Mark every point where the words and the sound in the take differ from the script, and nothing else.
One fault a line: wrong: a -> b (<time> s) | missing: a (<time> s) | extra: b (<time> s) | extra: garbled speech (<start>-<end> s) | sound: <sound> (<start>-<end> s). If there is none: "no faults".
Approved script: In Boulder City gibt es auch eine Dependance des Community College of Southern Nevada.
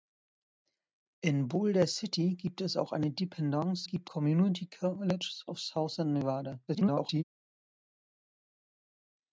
wrong: des -> gibt (3.8 s)
extra: garbled speech (6.7-7.2 s)